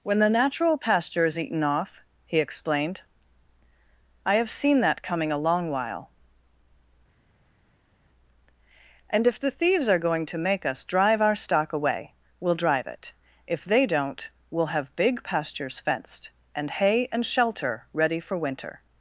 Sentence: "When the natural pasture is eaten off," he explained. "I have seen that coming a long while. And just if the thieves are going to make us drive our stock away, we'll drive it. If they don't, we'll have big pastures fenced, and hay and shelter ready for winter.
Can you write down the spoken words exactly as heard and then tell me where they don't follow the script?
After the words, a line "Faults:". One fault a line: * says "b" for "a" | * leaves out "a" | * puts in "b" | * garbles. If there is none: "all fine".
"When the natural pasture is eaten off," he explained. "I have seen that coming a long while. And if the thieves are going to make us drive our stock away, we'll drive it. If they don't, we'll have big pastures fenced, and hay and shelter ready for winter.
Faults:
* leaves out "just"